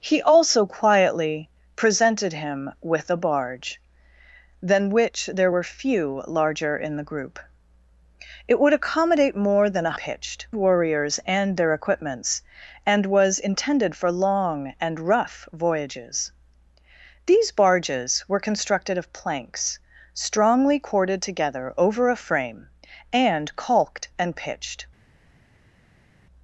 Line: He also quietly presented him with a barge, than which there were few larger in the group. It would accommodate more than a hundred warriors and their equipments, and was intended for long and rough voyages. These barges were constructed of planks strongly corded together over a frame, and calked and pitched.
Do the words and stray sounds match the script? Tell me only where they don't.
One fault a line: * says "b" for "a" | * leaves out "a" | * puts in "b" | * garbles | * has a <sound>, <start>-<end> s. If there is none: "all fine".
* says "pitched" for "hundred"